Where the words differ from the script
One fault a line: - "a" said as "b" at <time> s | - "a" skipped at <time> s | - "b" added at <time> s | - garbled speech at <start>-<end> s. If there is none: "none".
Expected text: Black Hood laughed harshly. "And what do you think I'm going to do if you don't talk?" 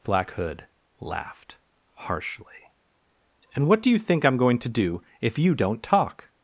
none